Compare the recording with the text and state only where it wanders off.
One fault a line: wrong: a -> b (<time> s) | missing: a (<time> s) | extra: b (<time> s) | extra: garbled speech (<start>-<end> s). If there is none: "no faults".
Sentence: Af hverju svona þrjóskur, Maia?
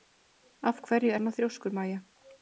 no faults